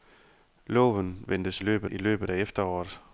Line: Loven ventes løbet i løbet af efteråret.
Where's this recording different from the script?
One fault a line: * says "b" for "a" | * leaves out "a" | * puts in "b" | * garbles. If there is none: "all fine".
all fine